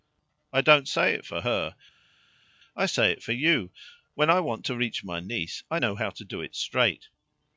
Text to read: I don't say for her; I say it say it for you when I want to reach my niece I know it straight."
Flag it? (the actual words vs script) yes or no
yes